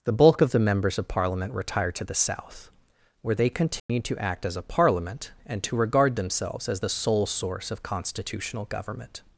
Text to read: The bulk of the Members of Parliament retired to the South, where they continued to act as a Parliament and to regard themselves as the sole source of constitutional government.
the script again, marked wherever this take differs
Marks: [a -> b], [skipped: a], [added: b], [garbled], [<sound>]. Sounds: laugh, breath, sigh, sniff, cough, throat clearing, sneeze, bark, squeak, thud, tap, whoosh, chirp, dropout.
The bulk of the Members of Parliament retired to the South, where they continued [dropout] to act as a Parliament and to regard themselves as the sole source of constitutional government.